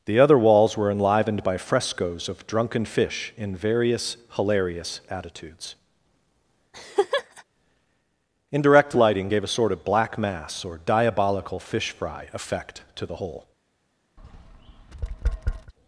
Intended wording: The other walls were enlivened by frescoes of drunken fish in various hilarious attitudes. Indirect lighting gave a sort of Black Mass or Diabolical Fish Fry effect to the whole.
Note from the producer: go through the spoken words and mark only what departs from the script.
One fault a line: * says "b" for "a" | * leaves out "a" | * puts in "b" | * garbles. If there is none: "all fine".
all fine